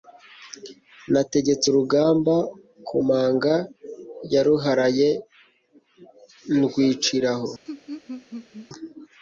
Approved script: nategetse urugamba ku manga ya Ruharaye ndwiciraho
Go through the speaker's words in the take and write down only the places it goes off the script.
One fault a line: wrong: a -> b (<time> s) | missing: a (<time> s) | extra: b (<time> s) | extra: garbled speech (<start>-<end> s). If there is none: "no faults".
no faults